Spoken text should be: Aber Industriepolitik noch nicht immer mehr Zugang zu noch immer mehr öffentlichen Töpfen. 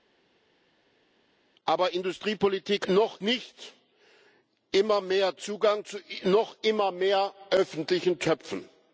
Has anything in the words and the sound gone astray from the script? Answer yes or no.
no